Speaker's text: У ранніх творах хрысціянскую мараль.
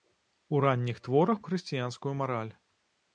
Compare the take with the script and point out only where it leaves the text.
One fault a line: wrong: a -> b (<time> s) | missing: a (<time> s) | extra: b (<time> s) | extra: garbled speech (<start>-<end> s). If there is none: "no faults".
no faults